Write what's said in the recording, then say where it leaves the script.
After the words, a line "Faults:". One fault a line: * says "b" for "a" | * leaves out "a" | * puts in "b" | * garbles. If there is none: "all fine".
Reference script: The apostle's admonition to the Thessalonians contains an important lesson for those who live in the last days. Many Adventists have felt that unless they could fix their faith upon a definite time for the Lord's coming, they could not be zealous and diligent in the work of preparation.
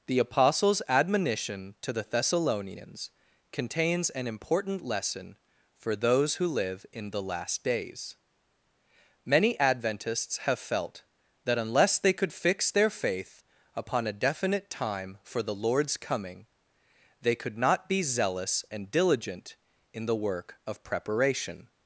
The apostle's admonition to the Thessalonians contains an important lesson for those who live in the last days. Many Adventists have felt that unless they could fix their faith upon a definite time for the Lord's coming, they could not be zealous and diligent in the work of preparation.
Faults:
all fine